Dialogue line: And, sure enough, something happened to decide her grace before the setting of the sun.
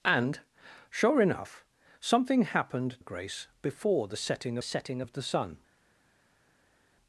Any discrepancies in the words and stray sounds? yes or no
yes